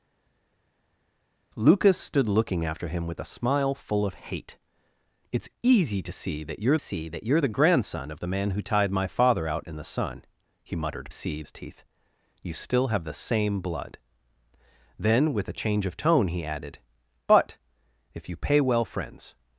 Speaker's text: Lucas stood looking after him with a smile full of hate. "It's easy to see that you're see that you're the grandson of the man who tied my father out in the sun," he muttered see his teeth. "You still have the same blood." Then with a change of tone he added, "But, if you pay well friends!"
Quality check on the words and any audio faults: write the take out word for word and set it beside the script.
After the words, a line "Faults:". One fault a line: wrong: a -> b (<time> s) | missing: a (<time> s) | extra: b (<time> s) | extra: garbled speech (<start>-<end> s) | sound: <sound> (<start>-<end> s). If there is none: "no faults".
Lucas stood looking after him with a smile full of hate. "It's easy to see that you're see that you're the grandson of the man who tied my father out in the sun," he muttered see his teeth. "You still have the same blood." Then with a change of tone he added, "But, if you pay well friends!"
Faults:
no faults